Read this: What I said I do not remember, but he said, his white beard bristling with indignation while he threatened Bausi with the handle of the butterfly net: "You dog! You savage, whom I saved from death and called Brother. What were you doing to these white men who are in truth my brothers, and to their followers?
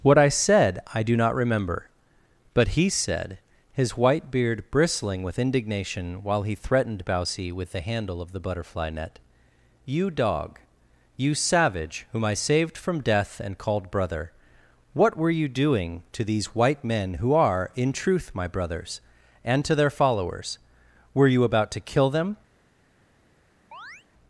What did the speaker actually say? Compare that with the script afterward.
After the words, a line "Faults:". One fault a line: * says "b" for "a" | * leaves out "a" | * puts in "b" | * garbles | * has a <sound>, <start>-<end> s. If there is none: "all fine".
What I said I do not remember, but he said, his white beard bristling with indignation while he threatened Bausi with the handle of the butterfly net: "You dog! You savage, whom I saved from death and called Brother. What were you doing to these white men who are in truth my brothers, and to their followers? Were you about to kill them
Faults:
* puts in "Were you about to kill them"
* has a chirp, 23.7-24.1 s